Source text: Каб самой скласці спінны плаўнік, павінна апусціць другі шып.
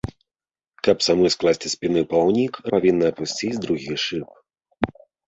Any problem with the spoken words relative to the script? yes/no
no